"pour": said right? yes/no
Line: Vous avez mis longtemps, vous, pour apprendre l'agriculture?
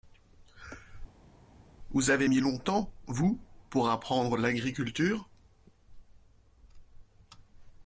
yes